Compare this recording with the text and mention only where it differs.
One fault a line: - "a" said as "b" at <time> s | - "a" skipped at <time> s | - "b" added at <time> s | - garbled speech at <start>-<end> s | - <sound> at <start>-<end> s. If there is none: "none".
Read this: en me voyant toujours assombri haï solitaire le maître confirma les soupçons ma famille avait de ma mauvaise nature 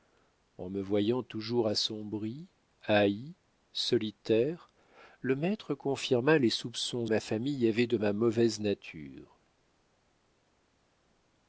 none